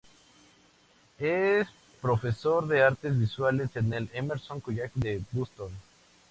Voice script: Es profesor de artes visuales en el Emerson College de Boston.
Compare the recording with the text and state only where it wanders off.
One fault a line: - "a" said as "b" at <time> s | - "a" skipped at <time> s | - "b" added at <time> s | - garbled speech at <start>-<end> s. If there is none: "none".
none